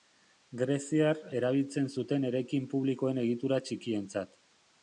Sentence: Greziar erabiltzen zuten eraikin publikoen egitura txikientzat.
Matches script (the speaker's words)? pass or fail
pass